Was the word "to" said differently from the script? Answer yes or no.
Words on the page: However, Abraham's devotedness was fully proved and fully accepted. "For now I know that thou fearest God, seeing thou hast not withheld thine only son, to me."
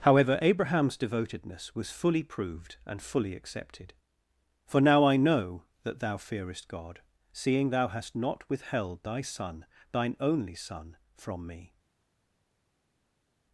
yes